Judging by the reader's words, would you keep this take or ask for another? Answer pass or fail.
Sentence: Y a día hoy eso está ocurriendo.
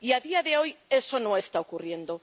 fail